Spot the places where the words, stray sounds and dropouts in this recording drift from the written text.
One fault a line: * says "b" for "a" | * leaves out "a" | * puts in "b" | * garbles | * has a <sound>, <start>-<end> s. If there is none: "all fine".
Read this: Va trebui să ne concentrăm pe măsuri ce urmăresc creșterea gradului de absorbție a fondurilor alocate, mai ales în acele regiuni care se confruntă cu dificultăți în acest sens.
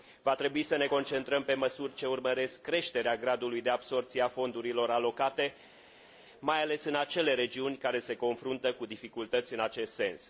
all fine